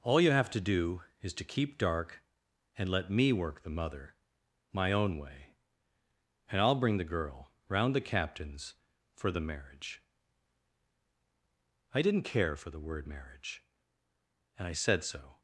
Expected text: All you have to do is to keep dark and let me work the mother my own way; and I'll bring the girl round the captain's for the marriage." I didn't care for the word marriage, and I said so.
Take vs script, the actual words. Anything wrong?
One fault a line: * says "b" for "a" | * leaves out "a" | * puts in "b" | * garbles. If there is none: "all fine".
all fine